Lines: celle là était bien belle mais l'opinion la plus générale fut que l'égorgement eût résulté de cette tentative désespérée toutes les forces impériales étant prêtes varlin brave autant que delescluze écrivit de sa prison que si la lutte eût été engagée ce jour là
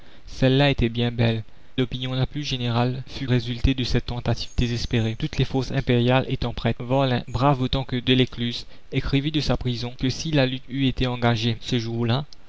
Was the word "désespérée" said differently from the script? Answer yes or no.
no